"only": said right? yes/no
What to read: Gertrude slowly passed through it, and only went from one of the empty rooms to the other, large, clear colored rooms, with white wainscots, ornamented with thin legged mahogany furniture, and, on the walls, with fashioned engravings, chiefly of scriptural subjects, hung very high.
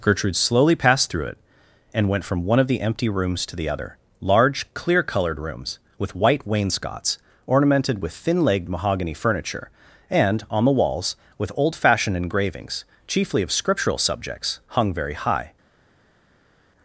no